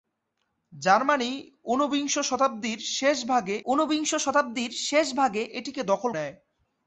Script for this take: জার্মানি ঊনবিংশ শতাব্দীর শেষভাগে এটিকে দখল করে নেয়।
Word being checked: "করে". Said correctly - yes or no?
no